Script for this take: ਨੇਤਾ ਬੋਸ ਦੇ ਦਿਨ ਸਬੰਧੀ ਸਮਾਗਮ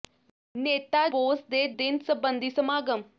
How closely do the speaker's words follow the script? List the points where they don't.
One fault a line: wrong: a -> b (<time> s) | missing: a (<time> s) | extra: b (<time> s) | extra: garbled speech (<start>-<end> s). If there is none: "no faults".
no faults